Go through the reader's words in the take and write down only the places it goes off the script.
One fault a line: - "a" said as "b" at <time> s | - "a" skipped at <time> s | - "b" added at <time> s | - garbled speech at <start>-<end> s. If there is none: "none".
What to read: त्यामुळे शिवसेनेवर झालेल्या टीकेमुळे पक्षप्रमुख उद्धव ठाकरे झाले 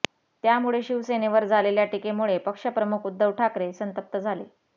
- "संतप्त" added at 3.7 s